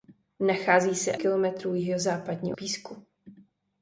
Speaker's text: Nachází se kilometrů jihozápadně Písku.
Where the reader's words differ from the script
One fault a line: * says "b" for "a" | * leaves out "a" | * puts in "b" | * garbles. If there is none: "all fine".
all fine